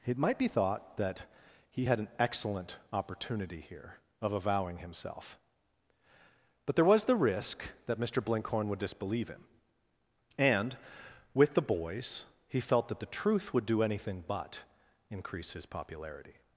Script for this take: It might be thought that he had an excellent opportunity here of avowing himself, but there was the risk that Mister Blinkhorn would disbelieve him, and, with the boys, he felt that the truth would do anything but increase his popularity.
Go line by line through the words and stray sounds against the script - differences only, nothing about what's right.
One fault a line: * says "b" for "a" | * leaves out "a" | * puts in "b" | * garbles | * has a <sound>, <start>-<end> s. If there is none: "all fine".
all fine